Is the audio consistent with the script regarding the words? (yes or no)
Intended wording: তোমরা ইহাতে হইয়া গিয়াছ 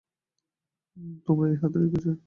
yes